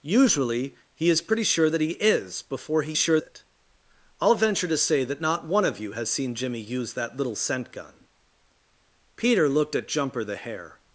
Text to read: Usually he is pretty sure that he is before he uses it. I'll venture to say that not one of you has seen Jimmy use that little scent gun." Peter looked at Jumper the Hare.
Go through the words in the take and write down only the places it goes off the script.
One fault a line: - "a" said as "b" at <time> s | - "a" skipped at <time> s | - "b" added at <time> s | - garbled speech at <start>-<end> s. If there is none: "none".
- "uses" said as "sure" at 2.9 s